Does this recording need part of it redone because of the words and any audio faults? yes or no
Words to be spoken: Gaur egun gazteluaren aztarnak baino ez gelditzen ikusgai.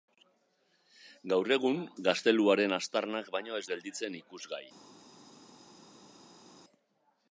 no